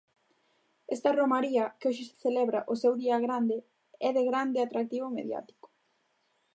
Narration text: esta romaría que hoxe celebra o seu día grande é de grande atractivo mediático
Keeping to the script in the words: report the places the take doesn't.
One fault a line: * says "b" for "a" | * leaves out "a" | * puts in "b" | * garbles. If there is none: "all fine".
all fine